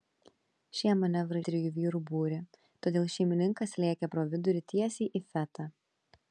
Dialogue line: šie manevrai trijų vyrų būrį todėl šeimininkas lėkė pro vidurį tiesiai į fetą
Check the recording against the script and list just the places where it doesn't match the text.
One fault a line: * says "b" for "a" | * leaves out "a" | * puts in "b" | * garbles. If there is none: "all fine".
all fine